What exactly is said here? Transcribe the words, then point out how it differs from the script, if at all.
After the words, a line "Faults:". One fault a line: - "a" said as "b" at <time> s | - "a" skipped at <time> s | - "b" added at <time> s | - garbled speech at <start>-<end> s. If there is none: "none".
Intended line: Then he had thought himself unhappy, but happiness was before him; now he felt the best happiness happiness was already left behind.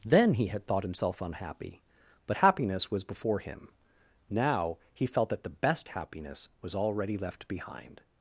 Then he had thought himself unhappy, but happiness was before him; now he felt that the best happiness was already left behind.
Faults:
- "that" added at 5.3 s
- "happiness" skipped at 6.5 s